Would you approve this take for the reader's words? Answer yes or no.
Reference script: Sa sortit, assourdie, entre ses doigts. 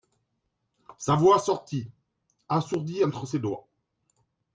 no